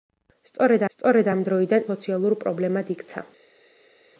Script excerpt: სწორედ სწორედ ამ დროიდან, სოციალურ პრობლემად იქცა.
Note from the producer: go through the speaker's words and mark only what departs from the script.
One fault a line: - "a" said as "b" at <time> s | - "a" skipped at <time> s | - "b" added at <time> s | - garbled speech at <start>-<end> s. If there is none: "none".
none